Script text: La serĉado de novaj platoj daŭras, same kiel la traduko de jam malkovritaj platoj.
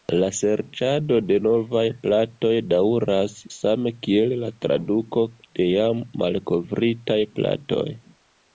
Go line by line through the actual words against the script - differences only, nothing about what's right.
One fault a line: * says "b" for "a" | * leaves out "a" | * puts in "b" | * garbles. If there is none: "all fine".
all fine